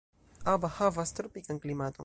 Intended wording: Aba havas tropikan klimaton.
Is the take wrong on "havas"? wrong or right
right